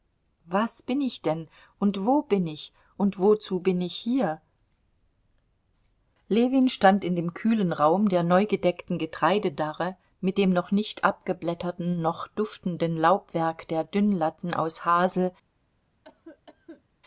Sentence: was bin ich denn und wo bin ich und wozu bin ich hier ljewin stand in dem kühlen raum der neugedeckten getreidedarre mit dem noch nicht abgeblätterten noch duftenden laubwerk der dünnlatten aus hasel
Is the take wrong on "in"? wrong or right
right